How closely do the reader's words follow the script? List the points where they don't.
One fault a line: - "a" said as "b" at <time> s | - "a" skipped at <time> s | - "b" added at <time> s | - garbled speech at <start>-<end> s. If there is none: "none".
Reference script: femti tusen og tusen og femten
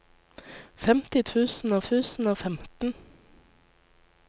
none